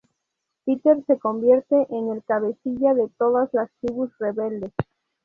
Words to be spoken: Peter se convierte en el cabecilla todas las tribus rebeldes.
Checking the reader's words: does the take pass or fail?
fail